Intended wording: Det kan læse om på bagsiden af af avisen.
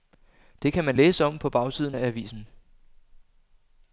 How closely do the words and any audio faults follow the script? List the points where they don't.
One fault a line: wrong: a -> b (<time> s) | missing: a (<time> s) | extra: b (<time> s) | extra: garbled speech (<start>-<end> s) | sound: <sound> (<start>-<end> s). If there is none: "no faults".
extra: man (0.8 s)
missing: af (2.1 s)